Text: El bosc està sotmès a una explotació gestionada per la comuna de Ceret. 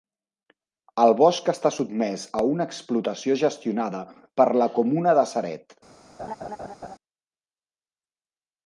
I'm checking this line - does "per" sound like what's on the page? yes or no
yes